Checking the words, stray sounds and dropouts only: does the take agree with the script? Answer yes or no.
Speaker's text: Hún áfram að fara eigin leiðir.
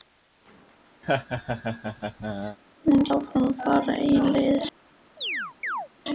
no